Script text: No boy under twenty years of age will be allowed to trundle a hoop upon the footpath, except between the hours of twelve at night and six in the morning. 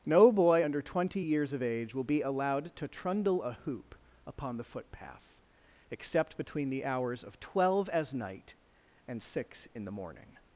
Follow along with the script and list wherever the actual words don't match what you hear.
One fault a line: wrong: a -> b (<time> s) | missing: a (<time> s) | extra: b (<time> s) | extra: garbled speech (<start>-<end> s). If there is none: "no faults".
wrong: at -> as (7.9 s)